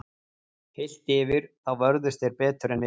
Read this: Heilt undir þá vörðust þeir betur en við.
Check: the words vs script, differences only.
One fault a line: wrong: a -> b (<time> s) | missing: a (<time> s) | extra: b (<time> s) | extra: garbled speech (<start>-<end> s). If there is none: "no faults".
wrong: undir -> yfir (1.2 s)